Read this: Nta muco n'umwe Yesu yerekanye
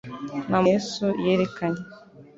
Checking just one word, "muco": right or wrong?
wrong